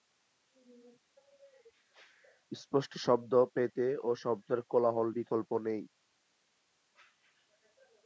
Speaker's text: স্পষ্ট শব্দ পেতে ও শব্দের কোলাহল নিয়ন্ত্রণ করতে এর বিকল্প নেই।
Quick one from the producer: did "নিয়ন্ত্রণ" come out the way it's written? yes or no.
no